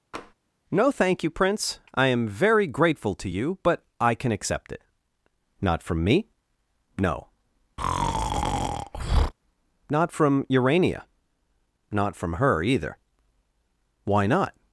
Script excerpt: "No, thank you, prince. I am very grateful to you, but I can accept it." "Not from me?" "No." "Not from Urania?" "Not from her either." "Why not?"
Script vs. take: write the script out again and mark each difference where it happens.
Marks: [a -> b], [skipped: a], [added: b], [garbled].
"No, thank you, prince. I am very grateful to you, but I can accept it." "Not from me?" "No." "Not from Urania?" "Not from her either." "Why not?"